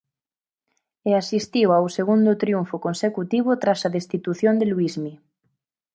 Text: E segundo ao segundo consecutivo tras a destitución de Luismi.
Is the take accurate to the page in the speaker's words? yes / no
no